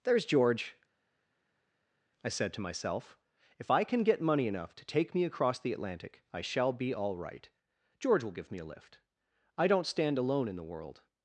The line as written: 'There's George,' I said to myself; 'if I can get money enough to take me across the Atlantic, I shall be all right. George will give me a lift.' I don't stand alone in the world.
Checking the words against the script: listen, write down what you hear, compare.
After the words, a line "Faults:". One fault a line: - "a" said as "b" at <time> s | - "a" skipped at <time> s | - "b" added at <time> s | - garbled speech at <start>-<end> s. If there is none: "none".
'There's George,' I said to myself; 'if I can get money enough to take me across the Atlantic, I shall be all right. George will give me a lift.' I don't stand alone in the world.
Faults:
none